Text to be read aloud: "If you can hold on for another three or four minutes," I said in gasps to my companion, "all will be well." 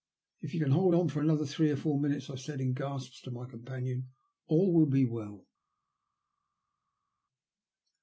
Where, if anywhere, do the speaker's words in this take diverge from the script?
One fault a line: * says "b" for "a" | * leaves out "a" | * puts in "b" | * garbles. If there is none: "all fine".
all fine